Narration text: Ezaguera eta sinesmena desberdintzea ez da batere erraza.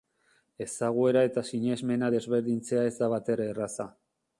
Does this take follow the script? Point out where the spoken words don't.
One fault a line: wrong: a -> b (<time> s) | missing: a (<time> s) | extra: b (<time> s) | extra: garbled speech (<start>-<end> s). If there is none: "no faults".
no faults